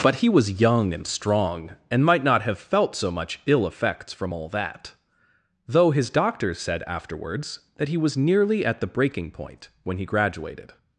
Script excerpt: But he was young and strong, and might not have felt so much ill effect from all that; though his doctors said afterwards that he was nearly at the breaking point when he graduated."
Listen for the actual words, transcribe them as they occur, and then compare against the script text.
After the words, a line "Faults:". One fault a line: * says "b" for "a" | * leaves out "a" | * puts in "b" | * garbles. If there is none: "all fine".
But he was young and strong, and might not have felt so much ill effects from all that; though his doctors said afterwards that he was nearly at the breaking point when he graduated."
Faults:
* says "effects" for "effect"